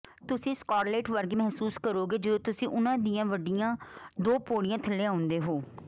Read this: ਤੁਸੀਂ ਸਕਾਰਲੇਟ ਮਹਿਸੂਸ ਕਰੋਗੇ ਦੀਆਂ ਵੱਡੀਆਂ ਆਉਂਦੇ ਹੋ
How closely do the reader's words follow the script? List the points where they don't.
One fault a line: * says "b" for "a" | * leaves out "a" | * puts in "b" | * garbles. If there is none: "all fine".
* puts in "ਵਰਗੇ"
* puts in "ਜਦੋਂ ਤੁਸੀਂ ਉਨ੍ਹਾਂ"
* puts in "ਦੋ ਪੌੜੀਆਂ ਥੱਲੇ"